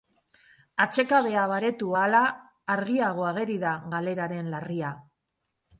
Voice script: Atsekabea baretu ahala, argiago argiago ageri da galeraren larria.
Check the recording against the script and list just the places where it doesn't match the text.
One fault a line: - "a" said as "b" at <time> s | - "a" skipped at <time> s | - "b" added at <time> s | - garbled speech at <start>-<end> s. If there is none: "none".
- "argiago" skipped at 3.3 s